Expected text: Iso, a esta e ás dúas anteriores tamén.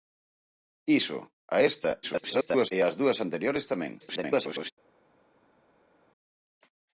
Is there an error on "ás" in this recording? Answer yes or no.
no